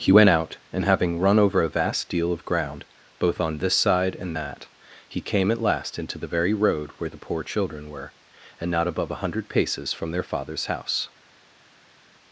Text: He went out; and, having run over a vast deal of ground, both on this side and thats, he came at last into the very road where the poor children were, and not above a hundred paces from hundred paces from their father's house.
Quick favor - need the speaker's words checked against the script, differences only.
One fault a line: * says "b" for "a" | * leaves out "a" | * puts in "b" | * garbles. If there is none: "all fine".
* says "that" for "thats"
* leaves out "hundred paces from"